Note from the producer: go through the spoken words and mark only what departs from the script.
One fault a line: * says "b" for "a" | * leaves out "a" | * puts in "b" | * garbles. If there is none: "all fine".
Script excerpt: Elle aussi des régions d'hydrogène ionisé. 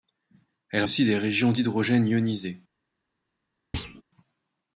all fine